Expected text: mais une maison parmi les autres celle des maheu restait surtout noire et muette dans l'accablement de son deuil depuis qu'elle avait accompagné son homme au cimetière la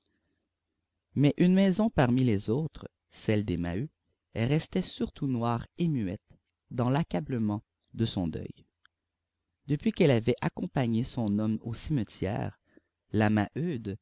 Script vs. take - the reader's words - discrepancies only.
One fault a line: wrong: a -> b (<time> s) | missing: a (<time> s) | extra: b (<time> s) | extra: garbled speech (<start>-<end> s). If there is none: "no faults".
no faults